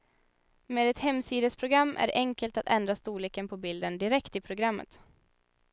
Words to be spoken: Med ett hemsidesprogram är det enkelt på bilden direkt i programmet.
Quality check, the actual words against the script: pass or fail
fail